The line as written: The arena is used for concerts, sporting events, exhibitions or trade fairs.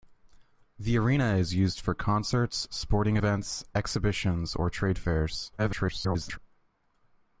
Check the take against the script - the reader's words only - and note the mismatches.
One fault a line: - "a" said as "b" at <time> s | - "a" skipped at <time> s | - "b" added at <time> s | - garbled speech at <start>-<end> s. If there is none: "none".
- garbled speech at 5.6-6.4 s